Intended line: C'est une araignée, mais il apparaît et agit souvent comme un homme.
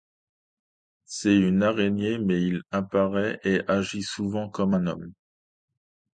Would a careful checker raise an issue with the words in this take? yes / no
no